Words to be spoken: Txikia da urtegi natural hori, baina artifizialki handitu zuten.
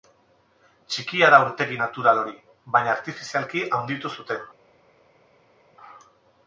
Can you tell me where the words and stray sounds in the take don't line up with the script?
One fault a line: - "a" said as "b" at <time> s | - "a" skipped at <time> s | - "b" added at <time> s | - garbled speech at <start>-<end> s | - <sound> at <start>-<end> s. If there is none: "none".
none